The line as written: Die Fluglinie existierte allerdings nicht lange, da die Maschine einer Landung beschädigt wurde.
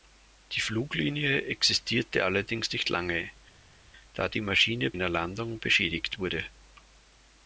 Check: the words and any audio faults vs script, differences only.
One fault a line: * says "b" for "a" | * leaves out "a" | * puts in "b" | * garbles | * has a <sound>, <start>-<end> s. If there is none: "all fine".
all fine